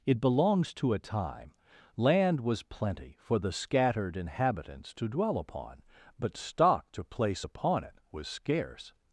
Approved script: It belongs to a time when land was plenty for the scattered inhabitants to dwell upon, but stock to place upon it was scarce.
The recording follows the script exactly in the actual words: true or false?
false